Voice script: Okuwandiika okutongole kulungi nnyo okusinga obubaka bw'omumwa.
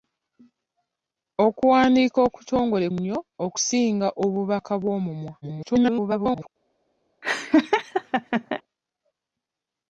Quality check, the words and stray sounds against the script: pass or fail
fail